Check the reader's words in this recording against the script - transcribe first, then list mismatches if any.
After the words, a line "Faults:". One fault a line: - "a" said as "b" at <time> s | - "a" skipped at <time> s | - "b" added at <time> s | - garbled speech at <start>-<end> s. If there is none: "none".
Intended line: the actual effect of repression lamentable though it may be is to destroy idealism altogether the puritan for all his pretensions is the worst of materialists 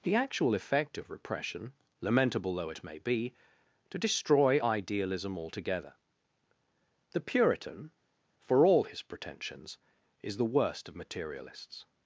the actual effect of repression lamentable though it may be to destroy idealism altogether the puritan for all his pretensions is the worst of materialists
Faults:
- "is" skipped at 3.3 s